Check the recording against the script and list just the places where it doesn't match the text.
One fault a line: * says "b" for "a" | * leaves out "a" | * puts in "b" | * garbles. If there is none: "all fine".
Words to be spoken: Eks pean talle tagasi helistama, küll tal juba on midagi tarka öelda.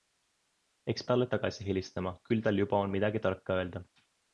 * leaves out "pean"